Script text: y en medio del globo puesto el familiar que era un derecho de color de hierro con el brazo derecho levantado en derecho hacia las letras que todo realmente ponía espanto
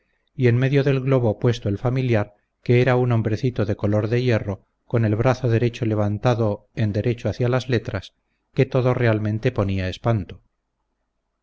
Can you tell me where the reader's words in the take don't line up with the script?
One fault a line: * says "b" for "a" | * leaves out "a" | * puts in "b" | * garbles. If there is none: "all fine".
* says "hombrecito" for "derecho"